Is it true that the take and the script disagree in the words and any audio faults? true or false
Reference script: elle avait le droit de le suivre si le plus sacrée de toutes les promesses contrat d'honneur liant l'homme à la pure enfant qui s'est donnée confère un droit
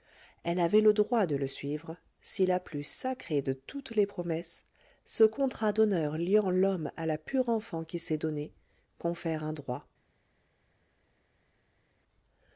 true